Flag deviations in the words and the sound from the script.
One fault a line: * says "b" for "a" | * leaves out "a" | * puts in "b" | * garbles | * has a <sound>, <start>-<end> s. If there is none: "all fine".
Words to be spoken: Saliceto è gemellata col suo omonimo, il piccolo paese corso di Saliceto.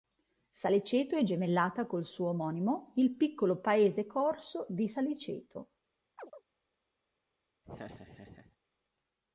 * has a chirp, 6.2-6.4 s
* has a laugh, 7.6-8.6 s